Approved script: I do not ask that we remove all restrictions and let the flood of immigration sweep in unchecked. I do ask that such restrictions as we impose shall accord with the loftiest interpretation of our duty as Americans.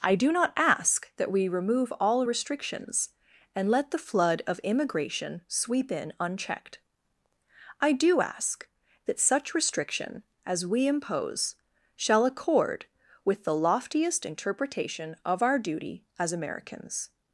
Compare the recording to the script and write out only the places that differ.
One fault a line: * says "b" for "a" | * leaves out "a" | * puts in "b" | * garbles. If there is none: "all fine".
* says "restriction" for "restrictions"